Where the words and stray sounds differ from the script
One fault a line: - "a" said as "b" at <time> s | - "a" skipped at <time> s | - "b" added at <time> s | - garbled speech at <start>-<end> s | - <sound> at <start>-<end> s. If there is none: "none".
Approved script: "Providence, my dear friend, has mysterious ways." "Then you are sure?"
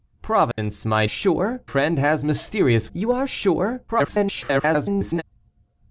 - dropout at 0.5-0.6 s
- "dear" said as "sure" at 1.0 s
- "ways Then" skipped at 2.9 s
- garbled speech at 3.9-5.2 s